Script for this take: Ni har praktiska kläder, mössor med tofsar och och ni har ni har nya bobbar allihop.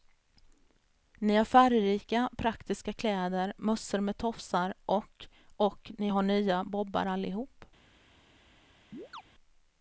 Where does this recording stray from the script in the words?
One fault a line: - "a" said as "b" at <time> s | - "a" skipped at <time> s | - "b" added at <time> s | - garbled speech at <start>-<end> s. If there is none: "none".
- "färgrika" added at 1.4 s
- "ni har" skipped at 6.2 s